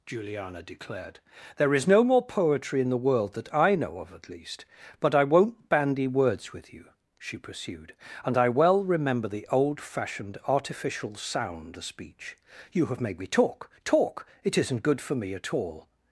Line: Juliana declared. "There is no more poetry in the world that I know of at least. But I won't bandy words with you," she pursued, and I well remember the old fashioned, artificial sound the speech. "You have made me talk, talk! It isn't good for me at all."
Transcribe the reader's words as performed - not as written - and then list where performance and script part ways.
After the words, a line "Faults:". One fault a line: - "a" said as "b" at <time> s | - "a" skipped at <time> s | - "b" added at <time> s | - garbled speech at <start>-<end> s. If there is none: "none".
Juliana declared. "There is no more poetry in the world that I know of at least. But I won't bandy words with you," she pursued, and I well remember the old fashioned, artificial sound the speech. "You have made me talk, talk! It isn't good for me at all."
Faults:
none